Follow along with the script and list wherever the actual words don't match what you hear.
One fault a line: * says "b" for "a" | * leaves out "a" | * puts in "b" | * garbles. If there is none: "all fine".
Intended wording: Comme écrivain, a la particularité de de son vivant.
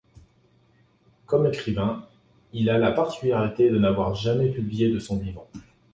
* puts in "il"
* puts in "n'avoir jamais publié"